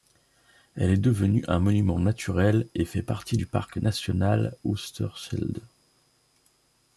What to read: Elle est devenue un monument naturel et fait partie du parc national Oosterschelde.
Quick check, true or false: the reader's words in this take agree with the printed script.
true